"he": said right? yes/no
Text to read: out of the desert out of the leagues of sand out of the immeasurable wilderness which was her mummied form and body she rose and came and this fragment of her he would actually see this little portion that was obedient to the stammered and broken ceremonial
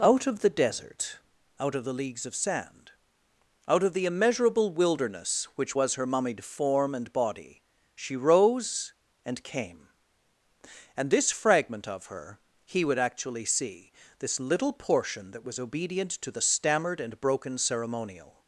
yes